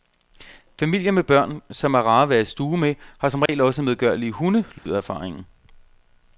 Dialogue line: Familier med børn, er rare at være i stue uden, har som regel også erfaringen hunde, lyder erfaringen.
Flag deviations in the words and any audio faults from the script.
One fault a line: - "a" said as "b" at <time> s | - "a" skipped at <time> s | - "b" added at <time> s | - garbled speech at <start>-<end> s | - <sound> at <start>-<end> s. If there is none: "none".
- "som" added at 1.7 s
- "uden" said as "med" at 2.8 s
- dropout at 3.5-3.5 s
- "erfaringen" said as "medgørlige" at 3.8 s
- dropout at 4.8-4.9 s